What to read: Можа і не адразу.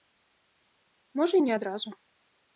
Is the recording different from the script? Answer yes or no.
no